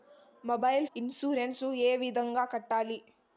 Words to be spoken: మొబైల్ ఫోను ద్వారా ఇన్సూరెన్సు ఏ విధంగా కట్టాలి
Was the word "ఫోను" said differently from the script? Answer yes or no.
yes